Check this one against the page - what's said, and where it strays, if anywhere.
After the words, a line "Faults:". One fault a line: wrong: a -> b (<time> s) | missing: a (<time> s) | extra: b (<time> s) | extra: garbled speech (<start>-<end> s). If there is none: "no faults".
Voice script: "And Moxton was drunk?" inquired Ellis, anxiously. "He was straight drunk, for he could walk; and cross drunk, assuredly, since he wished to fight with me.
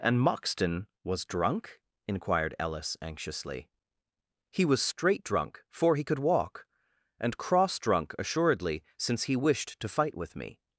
"And Moxton was drunk?" inquired Ellis, anxiously. "He was straight drunk, for he could walk; and cross drunk, assuredly, since he wished to fight with me.
Faults:
no faults